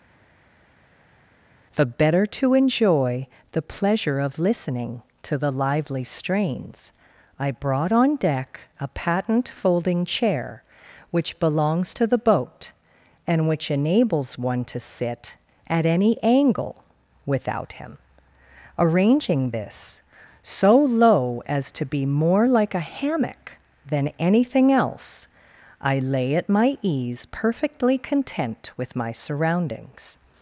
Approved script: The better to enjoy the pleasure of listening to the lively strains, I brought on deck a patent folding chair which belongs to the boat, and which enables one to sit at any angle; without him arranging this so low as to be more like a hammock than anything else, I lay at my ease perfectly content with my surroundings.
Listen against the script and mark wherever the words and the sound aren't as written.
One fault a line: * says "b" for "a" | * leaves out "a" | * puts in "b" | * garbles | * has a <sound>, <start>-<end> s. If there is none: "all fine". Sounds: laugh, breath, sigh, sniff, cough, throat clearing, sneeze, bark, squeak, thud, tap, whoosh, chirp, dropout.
all fine